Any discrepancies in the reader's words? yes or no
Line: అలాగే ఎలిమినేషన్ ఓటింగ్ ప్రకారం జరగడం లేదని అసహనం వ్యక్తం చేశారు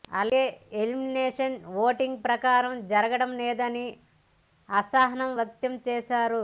no